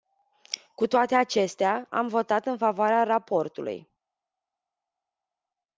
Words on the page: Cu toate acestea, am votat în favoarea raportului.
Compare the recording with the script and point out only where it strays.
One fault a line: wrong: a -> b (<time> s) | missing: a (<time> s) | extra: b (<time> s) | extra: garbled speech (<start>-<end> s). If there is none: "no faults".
no faults